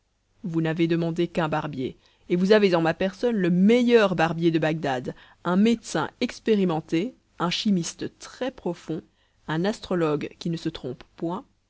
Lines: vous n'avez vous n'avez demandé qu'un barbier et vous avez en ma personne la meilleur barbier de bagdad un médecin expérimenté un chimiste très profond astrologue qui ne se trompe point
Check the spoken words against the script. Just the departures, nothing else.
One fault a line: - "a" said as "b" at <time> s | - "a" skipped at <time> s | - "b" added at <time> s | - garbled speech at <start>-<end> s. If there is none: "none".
- "vous n'avez" skipped at 0.9 s
- "la" said as "le" at 3.3 s
- "un" added at 9.5 s